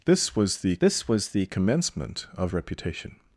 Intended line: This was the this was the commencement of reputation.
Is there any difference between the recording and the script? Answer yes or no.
no